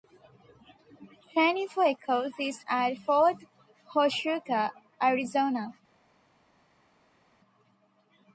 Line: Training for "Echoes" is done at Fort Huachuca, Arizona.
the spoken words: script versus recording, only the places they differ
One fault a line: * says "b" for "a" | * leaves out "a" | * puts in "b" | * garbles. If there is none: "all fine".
* leaves out "done"